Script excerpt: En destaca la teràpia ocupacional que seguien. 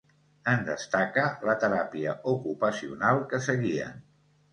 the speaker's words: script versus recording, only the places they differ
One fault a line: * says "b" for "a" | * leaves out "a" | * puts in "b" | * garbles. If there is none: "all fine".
all fine